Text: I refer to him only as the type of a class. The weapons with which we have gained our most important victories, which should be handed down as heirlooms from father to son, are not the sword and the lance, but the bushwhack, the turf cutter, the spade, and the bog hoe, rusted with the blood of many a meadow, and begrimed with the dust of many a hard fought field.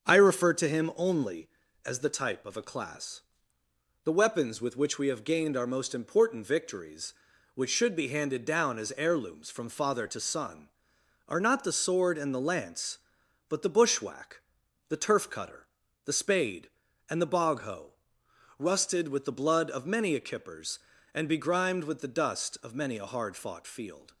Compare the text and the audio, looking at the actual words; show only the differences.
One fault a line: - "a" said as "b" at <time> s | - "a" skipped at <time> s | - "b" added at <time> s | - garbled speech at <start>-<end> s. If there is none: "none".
- "meadow" said as "kippers" at 20.2 s